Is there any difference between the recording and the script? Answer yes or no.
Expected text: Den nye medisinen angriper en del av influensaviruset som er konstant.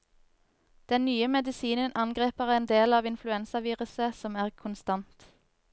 no